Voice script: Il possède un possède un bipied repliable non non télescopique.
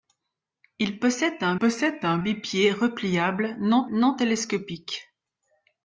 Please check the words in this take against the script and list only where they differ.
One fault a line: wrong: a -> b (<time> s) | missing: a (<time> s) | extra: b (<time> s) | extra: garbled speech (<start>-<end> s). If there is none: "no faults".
no faults